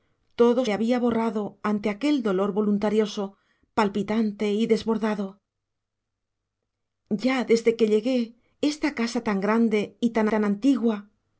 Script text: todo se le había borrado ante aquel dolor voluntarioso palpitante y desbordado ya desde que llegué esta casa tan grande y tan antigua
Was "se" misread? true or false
true